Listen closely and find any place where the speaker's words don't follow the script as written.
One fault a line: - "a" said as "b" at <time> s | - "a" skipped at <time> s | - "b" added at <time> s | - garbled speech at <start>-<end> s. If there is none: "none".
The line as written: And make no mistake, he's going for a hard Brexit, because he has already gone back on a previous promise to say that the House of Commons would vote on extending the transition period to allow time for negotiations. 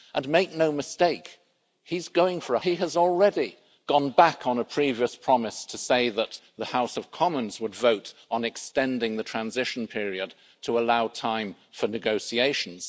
- "hard Brexit because" skipped at 2.6 s